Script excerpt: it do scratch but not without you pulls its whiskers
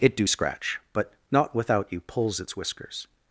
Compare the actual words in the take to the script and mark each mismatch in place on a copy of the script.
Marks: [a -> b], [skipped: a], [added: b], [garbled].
it do scratch but not without you pulls its whiskers